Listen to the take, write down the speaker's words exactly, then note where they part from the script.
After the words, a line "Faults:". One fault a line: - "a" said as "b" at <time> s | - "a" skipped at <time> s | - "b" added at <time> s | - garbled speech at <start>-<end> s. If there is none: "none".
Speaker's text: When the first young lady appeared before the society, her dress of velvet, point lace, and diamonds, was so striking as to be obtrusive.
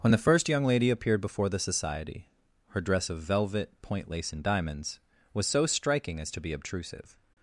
When the first young lady appeared before the society, her dress of velvet, point lace, and diamonds, was so striking as to be obtrusive.
Faults:
none